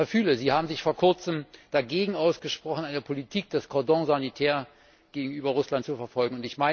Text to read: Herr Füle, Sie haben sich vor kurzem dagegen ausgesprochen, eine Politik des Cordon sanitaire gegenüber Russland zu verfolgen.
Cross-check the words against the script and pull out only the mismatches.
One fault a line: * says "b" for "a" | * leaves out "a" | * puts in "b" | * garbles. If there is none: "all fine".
all fine